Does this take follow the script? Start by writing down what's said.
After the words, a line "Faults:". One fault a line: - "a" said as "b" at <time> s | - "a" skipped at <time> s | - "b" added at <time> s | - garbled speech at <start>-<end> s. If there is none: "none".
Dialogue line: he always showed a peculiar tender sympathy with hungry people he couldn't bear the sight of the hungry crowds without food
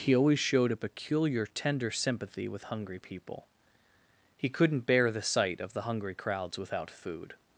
he always showed a peculiar tender sympathy with hungry people he couldn't bear the sight of the hungry crowds without food
Faults:
none